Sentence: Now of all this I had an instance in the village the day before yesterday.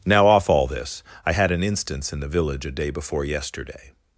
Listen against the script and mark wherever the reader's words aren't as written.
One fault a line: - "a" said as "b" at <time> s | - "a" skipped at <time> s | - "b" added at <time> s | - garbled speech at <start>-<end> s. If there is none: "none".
- "of" said as "off" at 0.3 s
- "the" said as "a" at 2.6 s